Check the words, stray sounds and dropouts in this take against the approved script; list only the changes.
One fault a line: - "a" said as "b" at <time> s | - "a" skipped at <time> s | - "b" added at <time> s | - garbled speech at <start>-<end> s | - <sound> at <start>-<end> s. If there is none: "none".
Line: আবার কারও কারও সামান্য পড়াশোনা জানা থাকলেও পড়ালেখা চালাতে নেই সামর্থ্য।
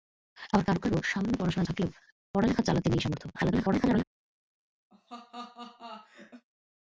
- "জানা" skipped at 1.7 s
- garbled speech at 3.3-4.0 s
- laugh at 4.9-6.5 s